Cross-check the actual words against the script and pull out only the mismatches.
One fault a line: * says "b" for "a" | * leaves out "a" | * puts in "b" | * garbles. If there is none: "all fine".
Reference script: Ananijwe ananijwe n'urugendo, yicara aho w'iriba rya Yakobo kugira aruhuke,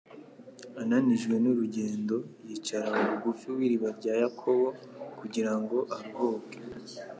* leaves out "ananijwe"
* puts in "bugufi"
* puts in "ngo"